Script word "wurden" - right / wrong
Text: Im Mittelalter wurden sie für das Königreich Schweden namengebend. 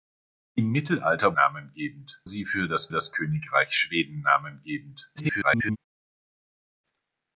wrong